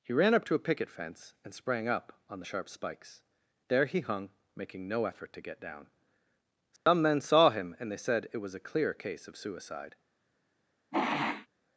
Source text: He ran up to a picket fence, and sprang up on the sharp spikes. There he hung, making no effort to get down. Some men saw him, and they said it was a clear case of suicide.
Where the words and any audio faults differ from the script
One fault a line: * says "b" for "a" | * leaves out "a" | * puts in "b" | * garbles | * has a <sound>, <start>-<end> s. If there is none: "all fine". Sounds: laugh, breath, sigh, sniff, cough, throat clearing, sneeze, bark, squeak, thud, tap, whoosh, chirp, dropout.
* has a dropout, 6.8-6.9 s
* has a sniff, 10.9-11.5 s